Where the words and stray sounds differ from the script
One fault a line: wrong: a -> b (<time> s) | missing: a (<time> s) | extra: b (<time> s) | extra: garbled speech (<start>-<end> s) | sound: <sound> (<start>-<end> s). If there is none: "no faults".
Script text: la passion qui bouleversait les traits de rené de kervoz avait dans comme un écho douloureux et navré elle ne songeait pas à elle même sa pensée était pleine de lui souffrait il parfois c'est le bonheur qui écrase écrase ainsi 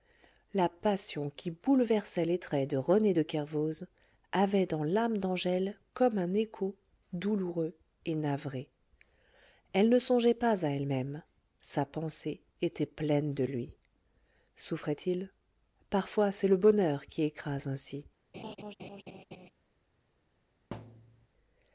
extra: l'âme d'angèle (4.8 s)
missing: écrase (17.6 s)
sound: laugh (18.3-19.5 s)
sound: thud (20.7-21.3 s)